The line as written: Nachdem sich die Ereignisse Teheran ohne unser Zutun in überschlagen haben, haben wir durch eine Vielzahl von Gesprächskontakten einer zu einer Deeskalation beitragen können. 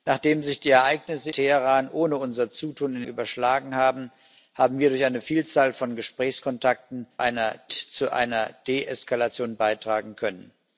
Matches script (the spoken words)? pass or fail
pass